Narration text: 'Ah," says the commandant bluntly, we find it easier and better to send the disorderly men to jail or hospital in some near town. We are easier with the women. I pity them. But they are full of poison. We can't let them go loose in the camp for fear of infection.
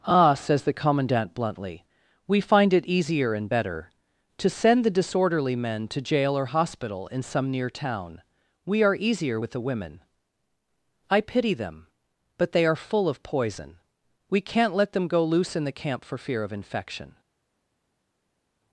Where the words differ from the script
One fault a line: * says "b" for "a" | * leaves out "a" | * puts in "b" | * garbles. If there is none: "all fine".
all fine